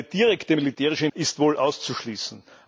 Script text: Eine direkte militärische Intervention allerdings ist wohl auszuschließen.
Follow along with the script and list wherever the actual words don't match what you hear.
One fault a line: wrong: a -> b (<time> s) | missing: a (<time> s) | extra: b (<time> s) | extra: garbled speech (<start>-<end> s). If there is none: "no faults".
missing: Intervention allerdings (1.1 s)